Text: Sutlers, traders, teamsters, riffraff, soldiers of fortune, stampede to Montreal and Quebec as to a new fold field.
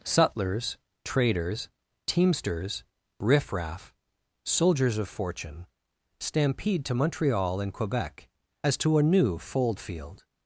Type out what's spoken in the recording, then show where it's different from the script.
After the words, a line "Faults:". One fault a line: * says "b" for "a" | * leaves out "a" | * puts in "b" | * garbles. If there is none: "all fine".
Sutlers, traders, teamsters, riffraff, soldiers of fortune, stampede to Montreal and Quebec as to a new fold field.
Faults:
all fine